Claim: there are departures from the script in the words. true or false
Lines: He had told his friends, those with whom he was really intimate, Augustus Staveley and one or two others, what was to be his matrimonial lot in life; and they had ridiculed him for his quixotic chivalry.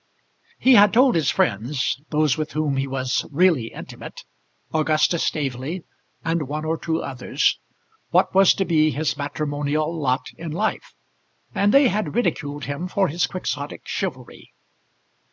false